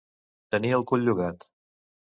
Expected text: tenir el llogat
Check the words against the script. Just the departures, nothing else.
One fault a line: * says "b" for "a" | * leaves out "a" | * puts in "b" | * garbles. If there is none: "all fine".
* puts in "cul"